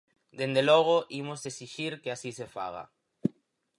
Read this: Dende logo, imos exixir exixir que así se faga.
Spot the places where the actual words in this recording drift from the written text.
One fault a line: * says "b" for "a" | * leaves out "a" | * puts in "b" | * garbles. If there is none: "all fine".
* leaves out "exixir"